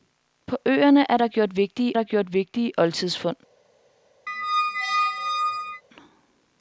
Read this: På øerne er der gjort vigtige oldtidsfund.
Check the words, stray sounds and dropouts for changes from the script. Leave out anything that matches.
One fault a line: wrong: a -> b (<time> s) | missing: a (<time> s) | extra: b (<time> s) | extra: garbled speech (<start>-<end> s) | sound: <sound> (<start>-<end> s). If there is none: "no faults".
extra: der gjort vigtige (1.9 s)
sound: squeak (4.3-5.8 s)